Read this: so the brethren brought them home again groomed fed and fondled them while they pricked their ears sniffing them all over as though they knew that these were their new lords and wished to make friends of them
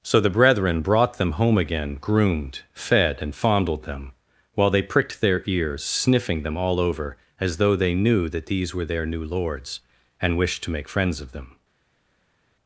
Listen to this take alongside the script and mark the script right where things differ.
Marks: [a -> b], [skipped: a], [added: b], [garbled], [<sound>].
so the brethren brought them home again groomed fed and fondled them while they pricked their ears sniffing them all over as though they knew that these were their new lords and wished to make friends of them